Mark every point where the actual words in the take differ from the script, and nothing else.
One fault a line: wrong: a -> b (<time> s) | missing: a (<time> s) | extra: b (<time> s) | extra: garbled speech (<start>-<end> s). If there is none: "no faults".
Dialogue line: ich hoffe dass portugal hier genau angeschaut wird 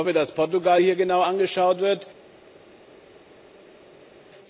no faults